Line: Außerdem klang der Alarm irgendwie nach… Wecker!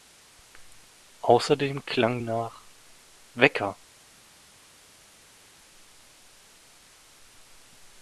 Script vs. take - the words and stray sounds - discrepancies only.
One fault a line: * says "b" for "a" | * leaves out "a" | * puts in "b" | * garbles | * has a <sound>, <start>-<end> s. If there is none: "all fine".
* leaves out "der Alarm irgendwie"